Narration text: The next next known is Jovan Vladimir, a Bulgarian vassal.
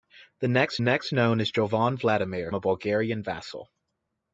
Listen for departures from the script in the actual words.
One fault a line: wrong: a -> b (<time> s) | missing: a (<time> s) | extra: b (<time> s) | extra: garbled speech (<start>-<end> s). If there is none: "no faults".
no faults